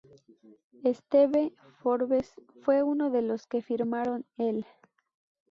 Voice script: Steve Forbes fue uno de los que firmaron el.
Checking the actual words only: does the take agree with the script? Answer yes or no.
yes